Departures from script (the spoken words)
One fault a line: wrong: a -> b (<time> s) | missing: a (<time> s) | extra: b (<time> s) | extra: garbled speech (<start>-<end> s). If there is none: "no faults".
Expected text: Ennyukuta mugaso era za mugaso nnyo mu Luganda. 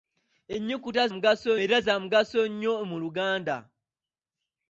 no faults